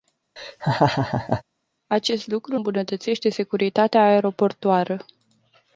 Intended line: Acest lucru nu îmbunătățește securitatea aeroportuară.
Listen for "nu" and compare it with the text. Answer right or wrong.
wrong